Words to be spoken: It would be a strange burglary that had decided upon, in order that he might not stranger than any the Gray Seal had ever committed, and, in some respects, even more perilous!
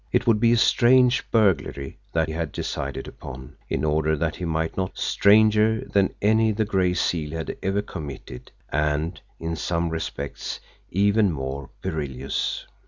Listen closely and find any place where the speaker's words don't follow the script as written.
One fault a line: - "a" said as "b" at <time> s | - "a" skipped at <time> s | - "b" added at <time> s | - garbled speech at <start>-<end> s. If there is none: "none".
none